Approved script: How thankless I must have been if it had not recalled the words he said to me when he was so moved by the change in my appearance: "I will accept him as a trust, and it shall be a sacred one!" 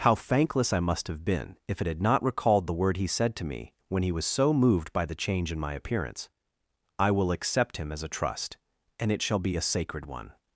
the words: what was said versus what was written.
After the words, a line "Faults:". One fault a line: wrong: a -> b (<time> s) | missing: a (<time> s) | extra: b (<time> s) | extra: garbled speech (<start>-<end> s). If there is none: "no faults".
How thankless I must have been if it had not recalled the word he said to me when he was so moved by the change in my appearance: "I will accept him as a trust, and it shall be a sacred one!"
Faults:
wrong: words -> word (2.7 s)